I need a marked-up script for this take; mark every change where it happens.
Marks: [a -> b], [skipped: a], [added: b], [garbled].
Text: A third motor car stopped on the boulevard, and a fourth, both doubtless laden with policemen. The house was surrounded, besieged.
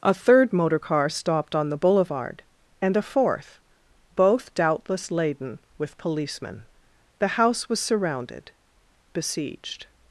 A third motor car stopped on the boulevard, and a fourth, both doubtless laden with policemen. The house was surrounded, besieged.